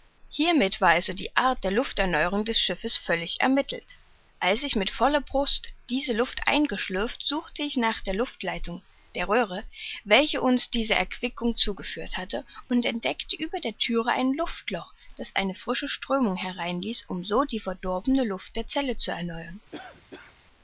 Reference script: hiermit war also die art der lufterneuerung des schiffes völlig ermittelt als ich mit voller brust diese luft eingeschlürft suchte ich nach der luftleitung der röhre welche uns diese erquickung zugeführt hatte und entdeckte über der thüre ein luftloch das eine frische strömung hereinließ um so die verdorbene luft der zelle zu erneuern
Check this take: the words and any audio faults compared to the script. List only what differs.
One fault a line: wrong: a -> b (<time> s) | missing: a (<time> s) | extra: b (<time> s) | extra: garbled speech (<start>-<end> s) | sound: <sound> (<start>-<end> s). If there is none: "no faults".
sound: cough (19.7-20.4 s)